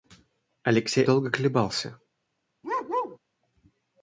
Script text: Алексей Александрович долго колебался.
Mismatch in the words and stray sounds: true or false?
true